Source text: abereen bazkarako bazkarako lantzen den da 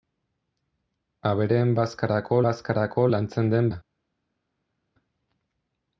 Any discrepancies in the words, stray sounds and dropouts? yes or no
no